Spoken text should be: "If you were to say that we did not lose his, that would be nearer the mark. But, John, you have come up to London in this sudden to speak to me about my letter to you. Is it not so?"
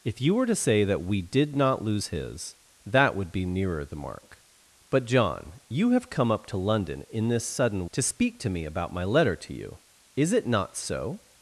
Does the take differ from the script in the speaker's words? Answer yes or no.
no